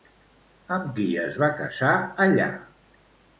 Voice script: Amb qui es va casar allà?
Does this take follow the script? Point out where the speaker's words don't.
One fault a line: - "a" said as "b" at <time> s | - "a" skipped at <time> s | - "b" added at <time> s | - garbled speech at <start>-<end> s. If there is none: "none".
none